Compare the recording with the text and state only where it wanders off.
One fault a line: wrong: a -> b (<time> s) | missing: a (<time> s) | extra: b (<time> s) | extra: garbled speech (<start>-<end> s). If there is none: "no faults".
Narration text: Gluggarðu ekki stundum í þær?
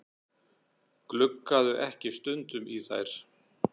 no faults